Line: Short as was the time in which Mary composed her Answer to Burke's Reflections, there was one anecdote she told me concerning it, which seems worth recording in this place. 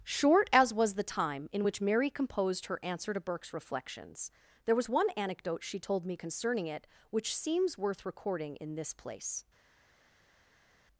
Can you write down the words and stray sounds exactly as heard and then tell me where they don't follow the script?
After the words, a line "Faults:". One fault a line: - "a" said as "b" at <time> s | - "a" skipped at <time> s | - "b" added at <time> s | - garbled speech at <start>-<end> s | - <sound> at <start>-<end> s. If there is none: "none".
Short as was the time in which Mary composed her Answer to Burke's Reflections, there was one anecdote she told me concerning it, which seems worth recording in this place.
Faults:
none